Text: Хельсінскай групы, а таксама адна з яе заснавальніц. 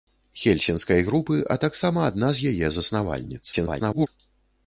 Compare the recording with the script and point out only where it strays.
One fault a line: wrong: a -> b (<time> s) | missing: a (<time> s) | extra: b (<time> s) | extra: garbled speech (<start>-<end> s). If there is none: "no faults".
extra: garbled speech (3.5-4.1 s)